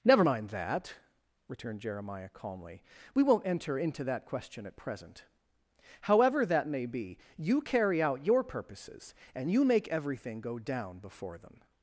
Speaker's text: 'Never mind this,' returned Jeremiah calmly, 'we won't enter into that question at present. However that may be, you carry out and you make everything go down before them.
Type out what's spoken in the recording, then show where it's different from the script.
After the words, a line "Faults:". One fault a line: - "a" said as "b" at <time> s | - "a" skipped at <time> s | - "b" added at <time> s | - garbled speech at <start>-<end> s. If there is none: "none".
'Never mind that,' returned Jeremiah calmly, 'we won't enter into that question at present. However that may be, you carry out your purposes, and you make everything go down before them.
Faults:
- "this" said as "that" at 0.5 s
- "your purposes" added at 8.2 s